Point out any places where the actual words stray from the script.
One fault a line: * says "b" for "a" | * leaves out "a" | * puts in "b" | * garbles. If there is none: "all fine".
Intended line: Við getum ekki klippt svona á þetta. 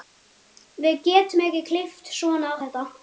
all fine